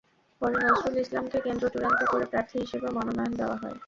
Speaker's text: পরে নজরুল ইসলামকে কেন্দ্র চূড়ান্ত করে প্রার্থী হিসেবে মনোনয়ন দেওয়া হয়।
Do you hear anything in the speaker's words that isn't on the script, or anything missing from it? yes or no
no